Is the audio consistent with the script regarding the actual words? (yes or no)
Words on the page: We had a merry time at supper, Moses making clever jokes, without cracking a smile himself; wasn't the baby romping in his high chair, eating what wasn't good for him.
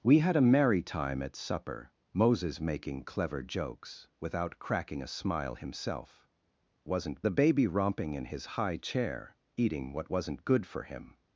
yes